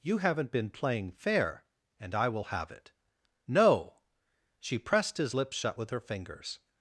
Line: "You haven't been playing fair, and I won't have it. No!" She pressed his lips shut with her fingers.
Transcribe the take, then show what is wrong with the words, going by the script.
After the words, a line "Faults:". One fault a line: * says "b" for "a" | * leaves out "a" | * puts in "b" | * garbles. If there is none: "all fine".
"You haven't been playing fair, and I will have it. No!" She pressed his lips shut with her fingers.
Faults:
* says "will" for "won't"